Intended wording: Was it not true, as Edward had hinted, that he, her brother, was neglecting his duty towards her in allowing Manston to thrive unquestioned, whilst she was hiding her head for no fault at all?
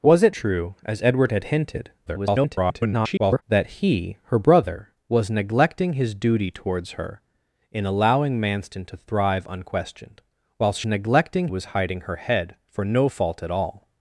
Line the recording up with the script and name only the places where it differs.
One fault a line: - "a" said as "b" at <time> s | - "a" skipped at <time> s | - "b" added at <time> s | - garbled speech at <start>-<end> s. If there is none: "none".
- "not" skipped at 0.3 s
- garbled speech at 2.1-3.4 s
- "she" said as "neglecting" at 10.9 s